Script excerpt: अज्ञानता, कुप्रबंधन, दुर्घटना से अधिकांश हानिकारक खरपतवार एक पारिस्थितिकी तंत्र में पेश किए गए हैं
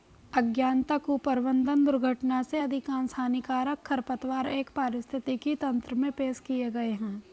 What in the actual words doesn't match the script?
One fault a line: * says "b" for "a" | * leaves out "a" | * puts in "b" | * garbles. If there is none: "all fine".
all fine